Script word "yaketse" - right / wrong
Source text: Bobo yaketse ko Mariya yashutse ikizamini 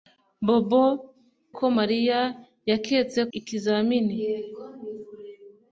wrong